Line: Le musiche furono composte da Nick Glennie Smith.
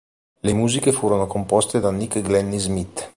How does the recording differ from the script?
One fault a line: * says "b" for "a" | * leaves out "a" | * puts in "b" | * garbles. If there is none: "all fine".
all fine